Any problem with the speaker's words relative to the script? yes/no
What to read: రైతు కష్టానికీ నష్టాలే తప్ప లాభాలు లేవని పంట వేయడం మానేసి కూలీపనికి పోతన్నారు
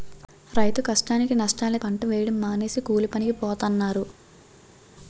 yes